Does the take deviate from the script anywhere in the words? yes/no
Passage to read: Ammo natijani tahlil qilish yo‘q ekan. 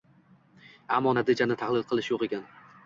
no